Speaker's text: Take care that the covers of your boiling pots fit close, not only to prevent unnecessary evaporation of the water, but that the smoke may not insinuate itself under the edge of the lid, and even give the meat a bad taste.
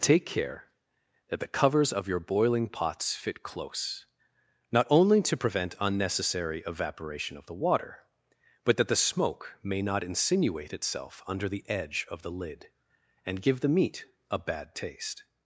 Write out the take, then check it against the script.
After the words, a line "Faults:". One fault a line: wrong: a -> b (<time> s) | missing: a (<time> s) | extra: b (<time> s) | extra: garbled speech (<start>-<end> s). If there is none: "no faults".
Take care that the covers of your boiling pots fit close, not only to prevent unnecessary evaporation of the water, but that the smoke may not insinuate itself under the edge of the lid, and give the meat a bad taste.
Faults:
missing: even (13.4 s)